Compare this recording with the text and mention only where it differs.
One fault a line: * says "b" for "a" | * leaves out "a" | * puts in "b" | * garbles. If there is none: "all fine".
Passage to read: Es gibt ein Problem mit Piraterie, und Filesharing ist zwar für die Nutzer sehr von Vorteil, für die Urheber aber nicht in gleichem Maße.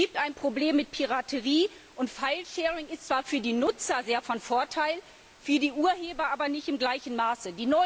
all fine